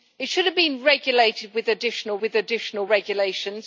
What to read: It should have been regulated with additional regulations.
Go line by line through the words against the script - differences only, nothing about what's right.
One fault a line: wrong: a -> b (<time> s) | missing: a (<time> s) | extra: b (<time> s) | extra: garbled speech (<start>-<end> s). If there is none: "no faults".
extra: with additional (2.2 s)